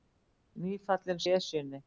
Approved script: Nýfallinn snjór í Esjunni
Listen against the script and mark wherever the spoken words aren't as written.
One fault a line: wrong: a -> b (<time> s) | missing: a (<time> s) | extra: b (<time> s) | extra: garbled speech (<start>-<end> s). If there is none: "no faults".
missing: snjór (1.2 s)